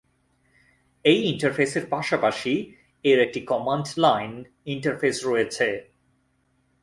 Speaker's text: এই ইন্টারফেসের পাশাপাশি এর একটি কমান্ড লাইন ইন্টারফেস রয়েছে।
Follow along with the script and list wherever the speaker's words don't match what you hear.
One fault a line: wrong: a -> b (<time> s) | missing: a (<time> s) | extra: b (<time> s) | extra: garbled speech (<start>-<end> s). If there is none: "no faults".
no faults